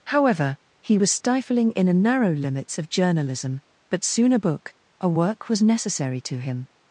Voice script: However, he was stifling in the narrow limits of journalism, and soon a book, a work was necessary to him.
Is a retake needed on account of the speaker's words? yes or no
yes